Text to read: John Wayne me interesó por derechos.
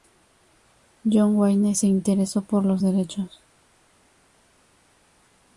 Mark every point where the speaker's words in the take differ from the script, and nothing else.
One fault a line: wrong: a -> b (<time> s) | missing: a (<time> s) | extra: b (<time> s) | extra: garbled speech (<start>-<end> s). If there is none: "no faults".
wrong: me -> se (1.8 s)
extra: los (2.6 s)